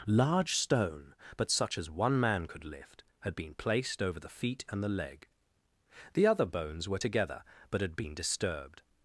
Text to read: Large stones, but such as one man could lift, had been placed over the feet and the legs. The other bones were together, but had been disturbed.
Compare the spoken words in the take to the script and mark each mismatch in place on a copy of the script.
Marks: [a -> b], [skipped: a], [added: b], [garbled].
Large [stones, -> stone] but such as one man could lift, had been placed over the feet and the [legs. -> leg] The other bones were together, but had been disturbed.